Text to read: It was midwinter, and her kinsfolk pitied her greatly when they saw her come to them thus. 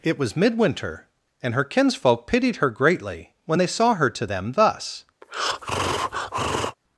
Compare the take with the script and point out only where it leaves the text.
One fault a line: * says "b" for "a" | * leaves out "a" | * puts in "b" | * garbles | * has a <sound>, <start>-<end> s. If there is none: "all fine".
* leaves out "come"
* has a breath, 5.2-6.8 s